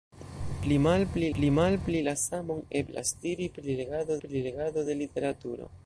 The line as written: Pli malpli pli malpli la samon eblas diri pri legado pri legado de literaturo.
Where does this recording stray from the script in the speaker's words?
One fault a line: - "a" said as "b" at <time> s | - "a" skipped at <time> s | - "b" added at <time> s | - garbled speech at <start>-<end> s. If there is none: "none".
none